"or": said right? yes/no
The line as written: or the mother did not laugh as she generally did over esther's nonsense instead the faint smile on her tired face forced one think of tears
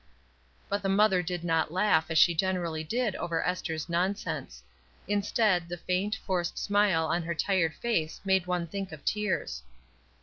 no